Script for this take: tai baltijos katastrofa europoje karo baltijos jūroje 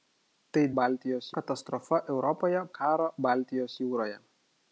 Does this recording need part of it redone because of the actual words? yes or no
no